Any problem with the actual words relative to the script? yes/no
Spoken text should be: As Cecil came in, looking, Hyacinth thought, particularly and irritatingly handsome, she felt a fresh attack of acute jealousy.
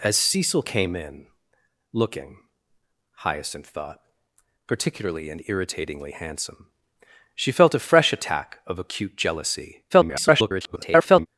yes